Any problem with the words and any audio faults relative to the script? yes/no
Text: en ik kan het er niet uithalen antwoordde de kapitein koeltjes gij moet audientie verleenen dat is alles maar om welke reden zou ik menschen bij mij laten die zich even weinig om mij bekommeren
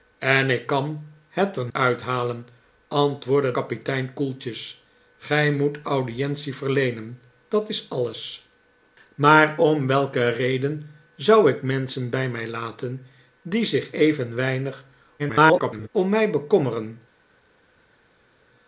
yes